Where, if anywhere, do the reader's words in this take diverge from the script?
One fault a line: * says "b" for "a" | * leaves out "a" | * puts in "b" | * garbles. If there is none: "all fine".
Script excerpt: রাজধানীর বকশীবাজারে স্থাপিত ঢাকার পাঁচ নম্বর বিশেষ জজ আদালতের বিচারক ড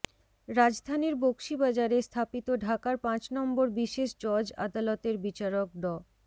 all fine